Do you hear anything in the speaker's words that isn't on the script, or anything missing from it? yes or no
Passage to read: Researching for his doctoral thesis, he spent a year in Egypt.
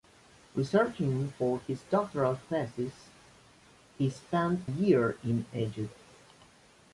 yes